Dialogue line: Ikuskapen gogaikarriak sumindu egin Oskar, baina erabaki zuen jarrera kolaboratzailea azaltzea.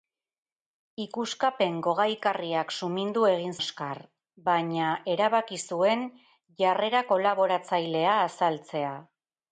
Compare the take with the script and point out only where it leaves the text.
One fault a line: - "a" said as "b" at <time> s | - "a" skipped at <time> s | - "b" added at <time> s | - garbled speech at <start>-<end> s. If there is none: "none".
none